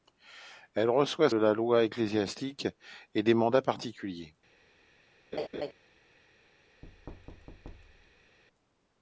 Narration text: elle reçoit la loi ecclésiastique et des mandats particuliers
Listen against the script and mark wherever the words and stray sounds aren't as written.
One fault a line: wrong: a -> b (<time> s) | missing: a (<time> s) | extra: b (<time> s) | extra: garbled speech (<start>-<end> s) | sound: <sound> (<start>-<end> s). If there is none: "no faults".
sound: laugh (5.3-5.7 s)
sound: thud (6.8-8.4 s)